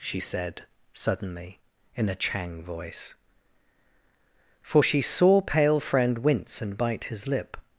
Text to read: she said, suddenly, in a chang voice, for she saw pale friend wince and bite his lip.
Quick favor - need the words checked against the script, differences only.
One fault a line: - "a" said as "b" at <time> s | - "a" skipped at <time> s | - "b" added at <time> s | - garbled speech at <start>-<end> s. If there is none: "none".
none